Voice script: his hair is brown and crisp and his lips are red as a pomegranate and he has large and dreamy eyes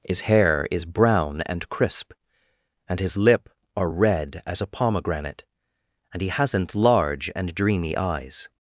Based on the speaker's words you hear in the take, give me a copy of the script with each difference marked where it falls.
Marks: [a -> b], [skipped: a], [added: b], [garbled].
his hair is brown and crisp and his [lips -> lip] are red as a pomegranate and he [has -> hasn't] large and dreamy eyes